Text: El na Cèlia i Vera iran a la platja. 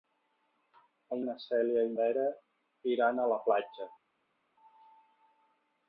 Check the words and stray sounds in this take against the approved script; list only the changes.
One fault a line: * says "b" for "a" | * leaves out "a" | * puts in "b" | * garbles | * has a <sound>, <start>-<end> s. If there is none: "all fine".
all fine